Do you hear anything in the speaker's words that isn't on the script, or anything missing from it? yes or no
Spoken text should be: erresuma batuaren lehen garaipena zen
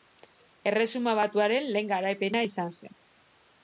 yes